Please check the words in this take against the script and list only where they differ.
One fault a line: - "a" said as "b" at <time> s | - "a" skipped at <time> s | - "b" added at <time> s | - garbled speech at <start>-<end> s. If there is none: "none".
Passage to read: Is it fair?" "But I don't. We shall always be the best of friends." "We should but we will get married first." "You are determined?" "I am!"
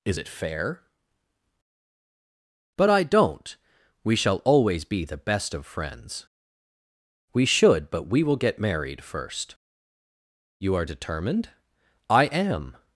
none